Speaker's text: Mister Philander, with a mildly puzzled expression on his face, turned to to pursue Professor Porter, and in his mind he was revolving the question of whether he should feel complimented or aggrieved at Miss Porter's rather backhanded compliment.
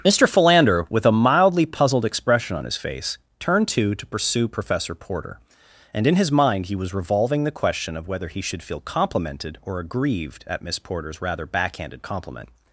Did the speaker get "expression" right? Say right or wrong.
right